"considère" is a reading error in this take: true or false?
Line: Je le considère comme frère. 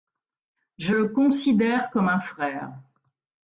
false